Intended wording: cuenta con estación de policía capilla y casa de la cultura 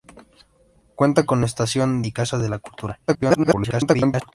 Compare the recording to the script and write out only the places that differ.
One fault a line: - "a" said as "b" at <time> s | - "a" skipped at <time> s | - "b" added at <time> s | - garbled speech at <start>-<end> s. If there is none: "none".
- "de policía capilla" skipped at 2.0 s
- garbled speech at 3.1-4.3 s